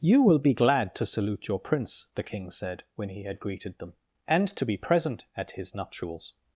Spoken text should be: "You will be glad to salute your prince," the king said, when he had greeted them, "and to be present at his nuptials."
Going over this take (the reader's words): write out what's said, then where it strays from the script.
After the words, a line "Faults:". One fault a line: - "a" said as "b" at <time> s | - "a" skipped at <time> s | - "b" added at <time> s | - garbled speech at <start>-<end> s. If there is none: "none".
"You will be glad to salute your prince," the king said, when he had greeted them, "and to be present at his nuptials."
Faults:
none